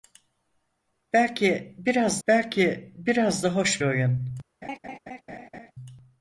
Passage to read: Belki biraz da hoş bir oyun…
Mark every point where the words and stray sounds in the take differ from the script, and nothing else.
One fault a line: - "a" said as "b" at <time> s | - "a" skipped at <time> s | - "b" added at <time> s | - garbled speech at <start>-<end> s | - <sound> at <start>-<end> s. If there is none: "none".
- "belki biraz" added at 2.3 s
- "bir" skipped at 3.8 s
- laugh at 4.6-5.7 s